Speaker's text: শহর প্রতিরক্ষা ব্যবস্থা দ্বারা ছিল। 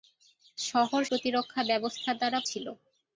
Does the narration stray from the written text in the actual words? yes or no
no